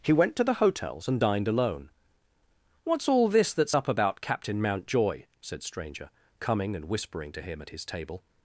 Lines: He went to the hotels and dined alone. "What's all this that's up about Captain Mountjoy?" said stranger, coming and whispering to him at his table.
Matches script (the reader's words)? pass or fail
pass